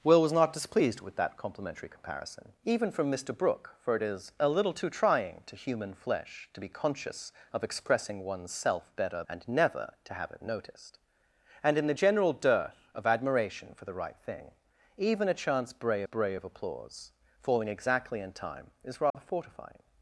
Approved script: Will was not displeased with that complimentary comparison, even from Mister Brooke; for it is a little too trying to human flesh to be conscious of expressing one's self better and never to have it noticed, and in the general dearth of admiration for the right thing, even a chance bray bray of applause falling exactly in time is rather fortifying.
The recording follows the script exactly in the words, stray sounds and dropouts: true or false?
false